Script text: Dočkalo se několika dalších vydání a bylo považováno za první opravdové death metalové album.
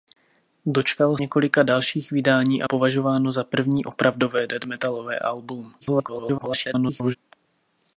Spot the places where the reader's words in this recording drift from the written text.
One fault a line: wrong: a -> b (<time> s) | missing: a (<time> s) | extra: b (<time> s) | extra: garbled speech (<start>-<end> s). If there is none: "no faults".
missing: se (1.2 s)
missing: bylo (2.7 s)
extra: garbled speech (5.8-7.2 s)